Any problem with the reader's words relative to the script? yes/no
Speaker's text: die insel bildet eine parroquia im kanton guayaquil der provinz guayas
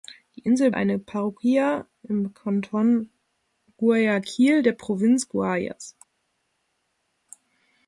yes